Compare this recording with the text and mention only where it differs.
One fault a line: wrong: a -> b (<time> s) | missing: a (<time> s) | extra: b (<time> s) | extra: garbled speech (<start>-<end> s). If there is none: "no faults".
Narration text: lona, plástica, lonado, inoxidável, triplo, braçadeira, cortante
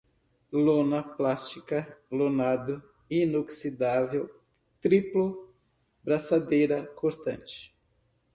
no faults